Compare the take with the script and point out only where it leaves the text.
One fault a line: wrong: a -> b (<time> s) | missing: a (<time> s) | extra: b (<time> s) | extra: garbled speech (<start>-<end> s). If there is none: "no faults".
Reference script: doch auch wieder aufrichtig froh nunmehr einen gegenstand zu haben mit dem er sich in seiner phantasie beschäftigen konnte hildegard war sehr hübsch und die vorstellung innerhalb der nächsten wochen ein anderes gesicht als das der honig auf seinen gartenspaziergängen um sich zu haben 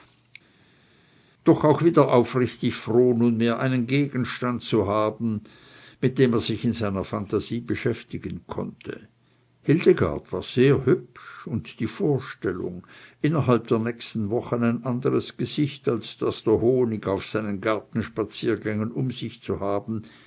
no faults